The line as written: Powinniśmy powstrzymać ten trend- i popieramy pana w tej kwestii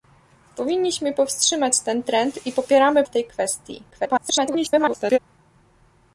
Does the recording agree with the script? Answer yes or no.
no